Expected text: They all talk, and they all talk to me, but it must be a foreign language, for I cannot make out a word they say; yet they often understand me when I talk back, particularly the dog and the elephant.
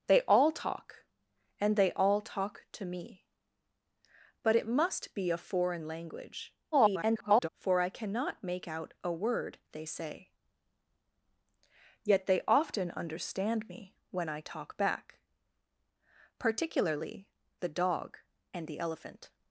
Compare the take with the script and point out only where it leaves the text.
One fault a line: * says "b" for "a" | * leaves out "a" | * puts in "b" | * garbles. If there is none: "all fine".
* garbles